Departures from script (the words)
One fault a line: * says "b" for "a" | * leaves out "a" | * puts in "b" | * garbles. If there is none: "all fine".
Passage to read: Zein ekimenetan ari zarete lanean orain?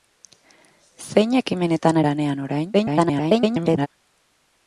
* leaves out "ari zarete"
* garbles